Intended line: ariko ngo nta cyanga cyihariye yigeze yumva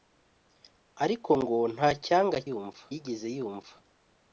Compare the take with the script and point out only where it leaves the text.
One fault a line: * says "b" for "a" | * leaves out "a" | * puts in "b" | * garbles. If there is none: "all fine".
* says "yumva" for "cyihariye"